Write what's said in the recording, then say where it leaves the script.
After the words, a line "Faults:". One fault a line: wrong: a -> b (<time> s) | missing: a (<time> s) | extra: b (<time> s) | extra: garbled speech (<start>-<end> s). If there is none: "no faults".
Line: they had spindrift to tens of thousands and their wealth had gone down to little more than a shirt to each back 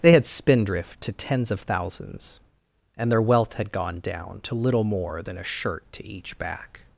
they had spindrift to tens of thousands and their wealth had gone down to little more than a shirt to each back
Faults:
no faults